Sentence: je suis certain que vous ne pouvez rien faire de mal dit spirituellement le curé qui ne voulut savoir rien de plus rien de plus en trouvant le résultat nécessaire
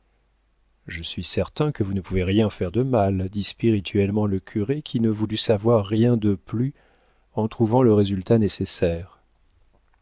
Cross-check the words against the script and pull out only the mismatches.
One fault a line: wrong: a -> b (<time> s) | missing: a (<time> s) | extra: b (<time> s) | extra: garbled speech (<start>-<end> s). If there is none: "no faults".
missing: rien de plus (6.7 s)